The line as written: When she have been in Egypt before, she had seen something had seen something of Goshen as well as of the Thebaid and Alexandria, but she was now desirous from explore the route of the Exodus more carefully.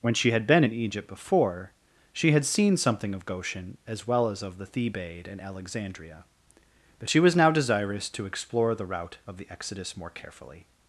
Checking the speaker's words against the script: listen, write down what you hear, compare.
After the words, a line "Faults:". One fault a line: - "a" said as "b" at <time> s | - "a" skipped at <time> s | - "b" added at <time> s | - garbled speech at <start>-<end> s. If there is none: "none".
When she had been in Egypt before, she had seen something of Goshen as well as of the Thebaid and Alexandria, but she was now desirous to explore the route of the Exodus more carefully.
Faults:
- "have" said as "had" at 0.3 s
- "had seen something" skipped at 3.1 s
- "from" said as "to" at 8.1 s